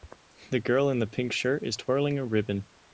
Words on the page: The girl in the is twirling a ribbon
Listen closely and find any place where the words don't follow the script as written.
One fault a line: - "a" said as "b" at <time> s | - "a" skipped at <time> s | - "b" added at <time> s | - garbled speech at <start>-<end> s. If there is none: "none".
- "pink shirt" added at 1.1 s